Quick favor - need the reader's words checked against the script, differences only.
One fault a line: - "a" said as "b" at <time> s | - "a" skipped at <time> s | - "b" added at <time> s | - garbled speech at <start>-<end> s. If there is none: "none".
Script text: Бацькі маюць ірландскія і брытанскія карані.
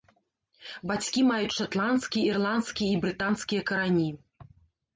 - "шатландскія" added at 1.6 s